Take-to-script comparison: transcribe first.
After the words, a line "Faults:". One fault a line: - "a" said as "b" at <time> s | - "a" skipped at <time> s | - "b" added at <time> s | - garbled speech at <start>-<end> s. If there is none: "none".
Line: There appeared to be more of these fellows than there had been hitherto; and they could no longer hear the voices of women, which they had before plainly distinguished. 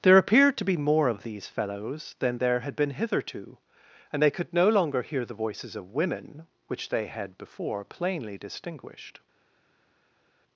There appeared to be more of these fellows than there had been hitherto; and they could no longer hear the voices of women, which they had before plainly distinguished.
Faults:
none